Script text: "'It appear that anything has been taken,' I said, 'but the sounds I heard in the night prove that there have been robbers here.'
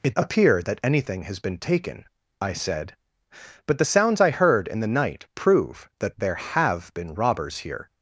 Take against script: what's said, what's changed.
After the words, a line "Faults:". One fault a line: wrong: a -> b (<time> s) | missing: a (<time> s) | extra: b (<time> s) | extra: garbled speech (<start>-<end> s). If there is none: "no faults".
"'It appear that anything has been taken,' I said, 'but the sounds I heard in the night prove that there have been robbers here.'
Faults:
no faults